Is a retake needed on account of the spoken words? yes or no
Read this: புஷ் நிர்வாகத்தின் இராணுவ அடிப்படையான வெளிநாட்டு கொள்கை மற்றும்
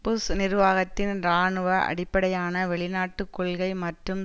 no